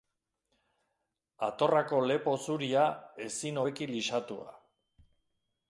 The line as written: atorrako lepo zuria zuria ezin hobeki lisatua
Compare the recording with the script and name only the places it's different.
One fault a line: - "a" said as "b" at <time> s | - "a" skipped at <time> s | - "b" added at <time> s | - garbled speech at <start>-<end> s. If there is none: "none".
- "zuria" skipped at 2.9 s